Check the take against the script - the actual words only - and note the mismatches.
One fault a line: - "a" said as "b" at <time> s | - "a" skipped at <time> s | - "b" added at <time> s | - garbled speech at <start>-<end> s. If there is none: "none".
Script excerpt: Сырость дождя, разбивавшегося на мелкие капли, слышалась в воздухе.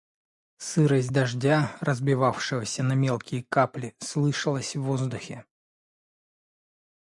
none